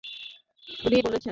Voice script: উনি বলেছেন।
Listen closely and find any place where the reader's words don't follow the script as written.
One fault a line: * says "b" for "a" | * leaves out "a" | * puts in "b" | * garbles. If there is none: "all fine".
all fine